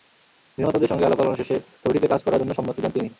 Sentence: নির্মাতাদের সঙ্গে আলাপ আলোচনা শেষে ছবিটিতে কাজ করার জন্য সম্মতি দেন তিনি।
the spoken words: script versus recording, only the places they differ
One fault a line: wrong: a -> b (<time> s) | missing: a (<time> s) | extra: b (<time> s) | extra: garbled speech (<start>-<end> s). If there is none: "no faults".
no faults